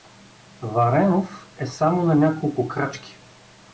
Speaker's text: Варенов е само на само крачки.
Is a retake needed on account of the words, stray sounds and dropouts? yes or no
yes